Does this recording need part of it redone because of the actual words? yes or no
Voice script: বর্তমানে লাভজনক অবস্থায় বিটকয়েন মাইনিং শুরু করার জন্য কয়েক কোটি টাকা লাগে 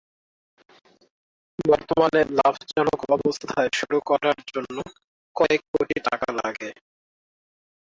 yes